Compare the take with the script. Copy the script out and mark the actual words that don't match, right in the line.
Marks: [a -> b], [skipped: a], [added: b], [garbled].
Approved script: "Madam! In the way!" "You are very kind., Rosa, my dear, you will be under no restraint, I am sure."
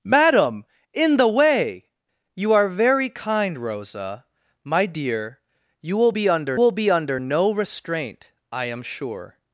"Madam! In the way!" "You are very kind., Rosa, my dear, you will be under [added: will be under] no restraint, I am sure."